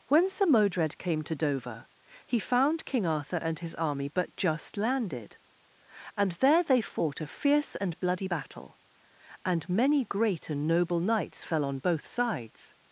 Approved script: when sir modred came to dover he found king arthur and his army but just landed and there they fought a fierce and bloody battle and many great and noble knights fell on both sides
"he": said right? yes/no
yes